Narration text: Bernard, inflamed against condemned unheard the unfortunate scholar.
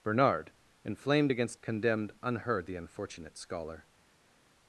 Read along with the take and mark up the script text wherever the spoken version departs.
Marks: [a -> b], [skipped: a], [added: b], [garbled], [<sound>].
Bernard, inflamed against condemned unheard the unfortunate scholar.